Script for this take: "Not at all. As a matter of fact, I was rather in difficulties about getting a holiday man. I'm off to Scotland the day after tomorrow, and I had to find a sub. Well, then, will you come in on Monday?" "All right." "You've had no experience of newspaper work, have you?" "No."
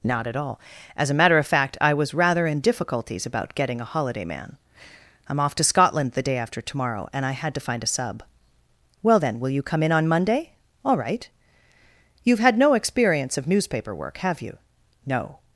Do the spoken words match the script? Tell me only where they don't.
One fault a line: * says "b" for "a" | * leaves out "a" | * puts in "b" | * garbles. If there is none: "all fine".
all fine